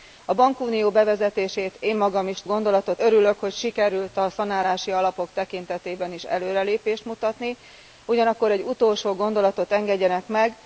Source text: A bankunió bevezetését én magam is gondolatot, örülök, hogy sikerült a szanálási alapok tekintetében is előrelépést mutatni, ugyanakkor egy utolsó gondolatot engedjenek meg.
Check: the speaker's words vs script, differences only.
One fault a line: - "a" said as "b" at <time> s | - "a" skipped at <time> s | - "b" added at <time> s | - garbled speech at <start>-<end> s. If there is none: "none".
none